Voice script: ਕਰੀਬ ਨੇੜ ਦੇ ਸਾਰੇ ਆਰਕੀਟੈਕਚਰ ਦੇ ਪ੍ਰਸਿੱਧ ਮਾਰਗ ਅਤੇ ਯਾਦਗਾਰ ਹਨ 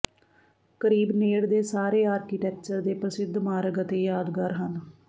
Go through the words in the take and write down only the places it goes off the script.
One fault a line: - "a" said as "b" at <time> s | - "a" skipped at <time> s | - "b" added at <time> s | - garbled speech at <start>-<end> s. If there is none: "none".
none